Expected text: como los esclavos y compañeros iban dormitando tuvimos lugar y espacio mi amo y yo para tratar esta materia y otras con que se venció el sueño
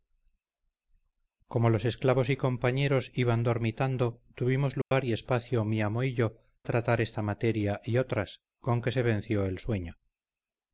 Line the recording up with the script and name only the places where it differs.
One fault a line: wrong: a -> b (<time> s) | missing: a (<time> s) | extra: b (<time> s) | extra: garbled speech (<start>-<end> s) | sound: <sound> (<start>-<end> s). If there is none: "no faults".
sound: dropout (4.8-4.9 s)
missing: para (6.4 s)